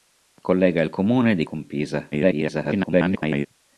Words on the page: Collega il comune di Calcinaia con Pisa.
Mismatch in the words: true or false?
true